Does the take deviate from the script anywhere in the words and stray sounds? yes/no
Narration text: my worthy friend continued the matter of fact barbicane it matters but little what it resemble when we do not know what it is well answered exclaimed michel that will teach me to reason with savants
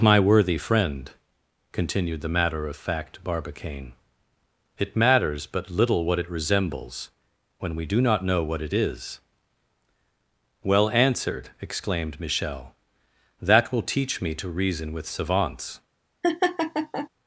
yes